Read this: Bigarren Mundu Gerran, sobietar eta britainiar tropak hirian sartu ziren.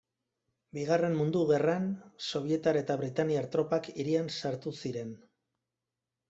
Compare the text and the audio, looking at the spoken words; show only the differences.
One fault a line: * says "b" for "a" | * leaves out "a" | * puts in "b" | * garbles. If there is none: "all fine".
all fine